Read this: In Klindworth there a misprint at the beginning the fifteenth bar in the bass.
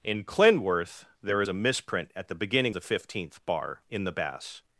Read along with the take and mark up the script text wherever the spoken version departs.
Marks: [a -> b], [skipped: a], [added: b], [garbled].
In Klindworth there a misprint at the beginning the fifteenth bar in the bass.